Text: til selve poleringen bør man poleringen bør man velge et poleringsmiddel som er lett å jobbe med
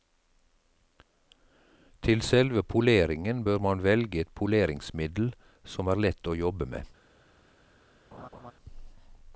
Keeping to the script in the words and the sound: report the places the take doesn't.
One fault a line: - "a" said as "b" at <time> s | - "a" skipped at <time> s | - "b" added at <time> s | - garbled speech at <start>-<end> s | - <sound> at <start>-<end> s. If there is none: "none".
- "poleringen bør man" skipped at 3.8 s
- laugh at 8.1-8.5 s